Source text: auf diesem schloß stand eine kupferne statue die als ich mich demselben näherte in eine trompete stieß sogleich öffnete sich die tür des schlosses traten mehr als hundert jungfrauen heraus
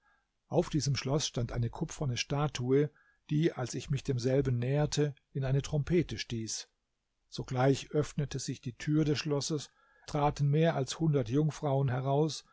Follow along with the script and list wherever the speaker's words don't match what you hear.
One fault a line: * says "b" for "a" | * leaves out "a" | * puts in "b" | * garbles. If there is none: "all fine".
all fine